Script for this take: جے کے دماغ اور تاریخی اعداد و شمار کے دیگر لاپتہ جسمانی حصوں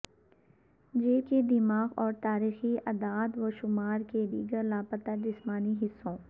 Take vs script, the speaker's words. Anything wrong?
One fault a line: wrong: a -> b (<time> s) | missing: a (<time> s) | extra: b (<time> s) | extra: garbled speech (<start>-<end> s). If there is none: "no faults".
no faults